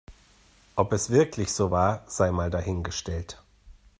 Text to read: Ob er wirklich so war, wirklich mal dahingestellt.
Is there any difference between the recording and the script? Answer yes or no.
yes